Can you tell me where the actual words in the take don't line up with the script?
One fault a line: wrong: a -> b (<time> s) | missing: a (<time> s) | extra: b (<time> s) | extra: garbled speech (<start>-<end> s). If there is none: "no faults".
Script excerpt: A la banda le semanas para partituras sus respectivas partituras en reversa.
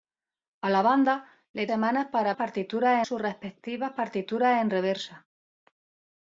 no faults